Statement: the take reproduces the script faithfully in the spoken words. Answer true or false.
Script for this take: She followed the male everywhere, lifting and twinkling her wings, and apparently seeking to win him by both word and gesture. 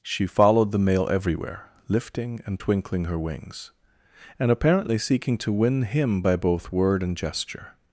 true